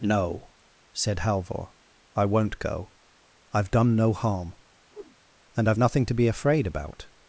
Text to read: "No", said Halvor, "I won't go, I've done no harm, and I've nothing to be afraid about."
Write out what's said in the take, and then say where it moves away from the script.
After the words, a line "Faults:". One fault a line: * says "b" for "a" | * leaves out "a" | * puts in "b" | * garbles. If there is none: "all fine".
"No", said Halvor, "I won't go, I've done no harm, and I've nothing to be afraid about."
Faults:
all fine